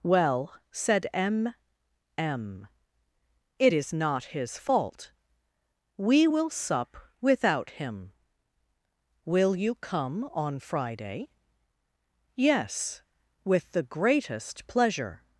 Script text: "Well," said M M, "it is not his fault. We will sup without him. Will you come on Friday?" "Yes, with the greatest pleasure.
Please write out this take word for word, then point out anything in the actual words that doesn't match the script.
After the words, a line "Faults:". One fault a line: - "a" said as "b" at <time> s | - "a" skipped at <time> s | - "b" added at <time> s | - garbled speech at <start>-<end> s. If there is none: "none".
"Well," said M M, "it is not his fault. We will sup without him. Will you come on Friday?" "Yes, with the greatest pleasure.
Faults:
none